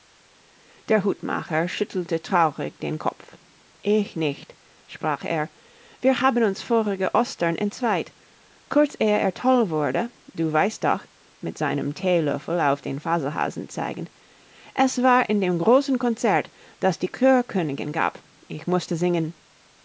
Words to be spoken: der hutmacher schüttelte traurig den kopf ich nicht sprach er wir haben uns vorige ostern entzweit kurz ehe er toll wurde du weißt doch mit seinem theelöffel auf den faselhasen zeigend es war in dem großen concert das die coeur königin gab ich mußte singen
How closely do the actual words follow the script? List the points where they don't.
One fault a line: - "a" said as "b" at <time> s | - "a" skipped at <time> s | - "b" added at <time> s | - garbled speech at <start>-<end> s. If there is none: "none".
none